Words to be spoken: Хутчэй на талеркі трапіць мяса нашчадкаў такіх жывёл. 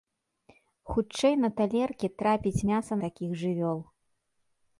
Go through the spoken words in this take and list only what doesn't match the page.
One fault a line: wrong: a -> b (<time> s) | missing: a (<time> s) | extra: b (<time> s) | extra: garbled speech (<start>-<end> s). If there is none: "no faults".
missing: нашчадкаў (2.9 s)